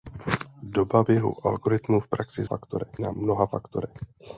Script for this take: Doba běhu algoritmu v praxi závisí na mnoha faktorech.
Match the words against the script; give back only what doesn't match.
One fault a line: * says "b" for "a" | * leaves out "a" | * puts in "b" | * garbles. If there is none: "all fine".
* says "faktorech" for "závisí"